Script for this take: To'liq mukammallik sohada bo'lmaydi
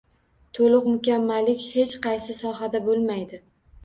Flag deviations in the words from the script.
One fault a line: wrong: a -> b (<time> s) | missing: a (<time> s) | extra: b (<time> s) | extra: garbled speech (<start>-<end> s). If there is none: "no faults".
extra: hech qaysi (1.7 s)